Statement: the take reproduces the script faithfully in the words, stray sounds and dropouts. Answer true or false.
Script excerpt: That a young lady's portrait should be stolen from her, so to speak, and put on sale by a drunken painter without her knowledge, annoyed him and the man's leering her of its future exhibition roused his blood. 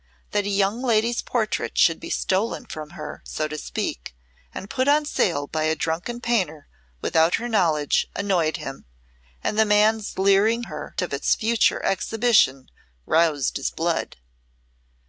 true